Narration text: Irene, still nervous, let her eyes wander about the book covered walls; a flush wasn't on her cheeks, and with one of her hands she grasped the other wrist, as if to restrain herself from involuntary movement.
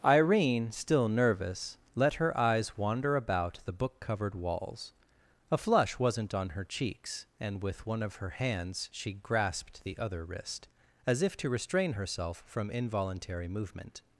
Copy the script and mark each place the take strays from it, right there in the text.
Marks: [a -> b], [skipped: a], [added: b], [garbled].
Irene, still nervous, let her eyes wander about the book covered walls; a flush wasn't on her cheeks, and with one of her hands she grasped the other wrist, as if to restrain herself from involuntary movement.